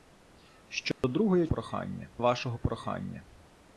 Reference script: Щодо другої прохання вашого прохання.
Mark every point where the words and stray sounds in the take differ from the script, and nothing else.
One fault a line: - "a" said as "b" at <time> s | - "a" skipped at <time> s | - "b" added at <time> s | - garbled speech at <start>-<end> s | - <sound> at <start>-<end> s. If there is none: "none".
- dropout at 0.9-1.0 s